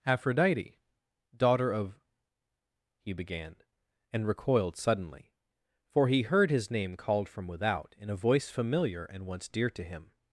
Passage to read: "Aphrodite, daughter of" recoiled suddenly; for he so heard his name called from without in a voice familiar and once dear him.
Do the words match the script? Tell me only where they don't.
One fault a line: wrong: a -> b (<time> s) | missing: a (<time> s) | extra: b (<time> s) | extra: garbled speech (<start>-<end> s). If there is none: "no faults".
extra: he began and (3.0 s)
missing: so (6.2 s)
extra: to (9.7 s)